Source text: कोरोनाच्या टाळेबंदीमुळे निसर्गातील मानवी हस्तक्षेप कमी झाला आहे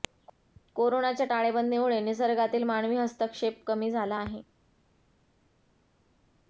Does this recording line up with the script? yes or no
yes